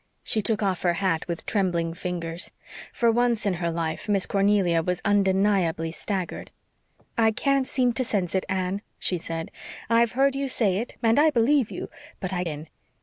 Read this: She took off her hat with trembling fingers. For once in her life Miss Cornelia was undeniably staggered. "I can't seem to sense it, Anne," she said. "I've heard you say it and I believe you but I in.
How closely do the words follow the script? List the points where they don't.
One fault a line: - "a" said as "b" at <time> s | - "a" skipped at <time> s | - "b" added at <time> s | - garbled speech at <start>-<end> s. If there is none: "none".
none